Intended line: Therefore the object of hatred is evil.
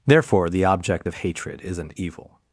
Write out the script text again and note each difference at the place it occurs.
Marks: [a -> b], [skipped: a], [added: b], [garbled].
Therefore the object of hatred [is -> isn't] evil.